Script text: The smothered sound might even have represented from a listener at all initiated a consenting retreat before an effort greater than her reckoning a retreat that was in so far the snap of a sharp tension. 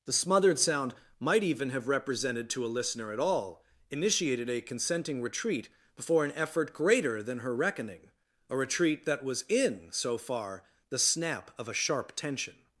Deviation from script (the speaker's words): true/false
true